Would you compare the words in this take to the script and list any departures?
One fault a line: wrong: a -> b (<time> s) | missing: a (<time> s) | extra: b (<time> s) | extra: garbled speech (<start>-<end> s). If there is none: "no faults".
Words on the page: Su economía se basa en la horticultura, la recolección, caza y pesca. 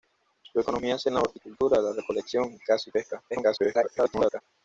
missing: basa (1.1 s)
extra: garbled speech (3.3-4.4 s)